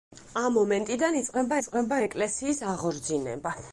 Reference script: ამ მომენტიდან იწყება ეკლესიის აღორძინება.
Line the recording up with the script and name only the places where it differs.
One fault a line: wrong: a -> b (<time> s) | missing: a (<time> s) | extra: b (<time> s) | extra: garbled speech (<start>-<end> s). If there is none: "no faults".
extra: იწყება (1.6 s)